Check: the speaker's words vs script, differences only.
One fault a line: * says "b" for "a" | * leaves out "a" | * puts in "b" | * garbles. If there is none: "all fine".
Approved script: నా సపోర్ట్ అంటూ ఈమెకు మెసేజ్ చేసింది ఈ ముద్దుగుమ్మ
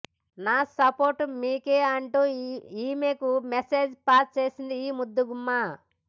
* puts in "మీకే"
* puts in "పాస్"